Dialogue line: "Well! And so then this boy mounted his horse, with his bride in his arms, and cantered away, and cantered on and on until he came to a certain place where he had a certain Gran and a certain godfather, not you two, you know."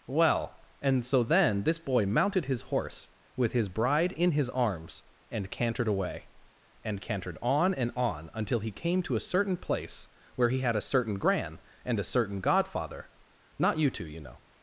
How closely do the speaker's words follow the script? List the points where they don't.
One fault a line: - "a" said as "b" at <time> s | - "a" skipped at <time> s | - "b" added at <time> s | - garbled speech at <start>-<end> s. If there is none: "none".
none